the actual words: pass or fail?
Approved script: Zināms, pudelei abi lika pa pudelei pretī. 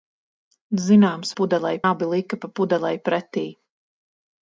pass